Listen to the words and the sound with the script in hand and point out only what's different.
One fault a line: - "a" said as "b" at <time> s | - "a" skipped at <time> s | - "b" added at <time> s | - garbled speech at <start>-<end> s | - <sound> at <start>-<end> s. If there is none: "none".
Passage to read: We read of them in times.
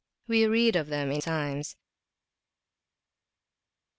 none